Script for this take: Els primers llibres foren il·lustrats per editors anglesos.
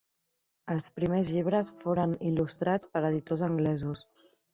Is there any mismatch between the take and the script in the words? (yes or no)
no